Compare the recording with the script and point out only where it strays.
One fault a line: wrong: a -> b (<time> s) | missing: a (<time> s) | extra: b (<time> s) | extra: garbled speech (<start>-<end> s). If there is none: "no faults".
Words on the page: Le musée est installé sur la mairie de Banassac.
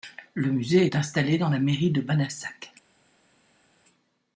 wrong: sur -> dans (1.4 s)